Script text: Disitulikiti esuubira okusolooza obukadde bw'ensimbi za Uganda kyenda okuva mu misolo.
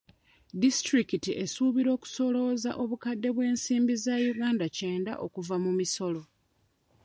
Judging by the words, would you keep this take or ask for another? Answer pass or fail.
pass